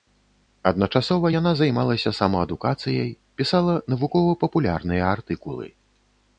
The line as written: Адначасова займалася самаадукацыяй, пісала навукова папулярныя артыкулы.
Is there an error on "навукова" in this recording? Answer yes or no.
no